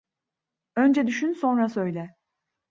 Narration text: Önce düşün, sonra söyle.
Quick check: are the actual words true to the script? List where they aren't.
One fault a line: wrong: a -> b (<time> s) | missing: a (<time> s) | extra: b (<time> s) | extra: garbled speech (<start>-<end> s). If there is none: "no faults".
no faults